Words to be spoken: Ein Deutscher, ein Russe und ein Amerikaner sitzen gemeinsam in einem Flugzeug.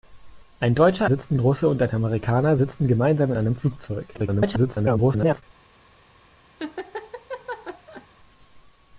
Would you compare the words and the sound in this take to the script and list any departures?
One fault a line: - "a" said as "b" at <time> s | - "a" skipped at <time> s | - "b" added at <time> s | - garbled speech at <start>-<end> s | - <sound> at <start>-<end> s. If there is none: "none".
- "ein" said as "sitzen" at 1.0 s
- "in" skipped at 3.3 s
- garbled speech at 4.1-5.4 s
- laugh at 6.6-8.1 s